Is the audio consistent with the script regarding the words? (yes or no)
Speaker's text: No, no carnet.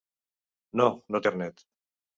yes